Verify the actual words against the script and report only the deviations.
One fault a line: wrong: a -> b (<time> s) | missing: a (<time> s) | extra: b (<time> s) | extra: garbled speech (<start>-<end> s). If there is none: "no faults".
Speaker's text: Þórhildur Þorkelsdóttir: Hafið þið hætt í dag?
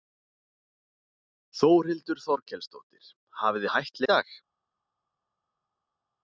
no faults